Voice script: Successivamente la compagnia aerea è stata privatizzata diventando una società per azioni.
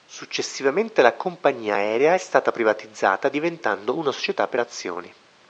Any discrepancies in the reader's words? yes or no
no